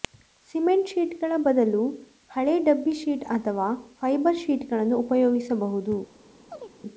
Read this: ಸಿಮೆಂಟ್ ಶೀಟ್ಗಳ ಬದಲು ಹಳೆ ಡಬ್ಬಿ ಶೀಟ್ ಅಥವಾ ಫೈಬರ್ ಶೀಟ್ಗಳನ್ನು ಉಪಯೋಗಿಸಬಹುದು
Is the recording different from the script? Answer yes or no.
no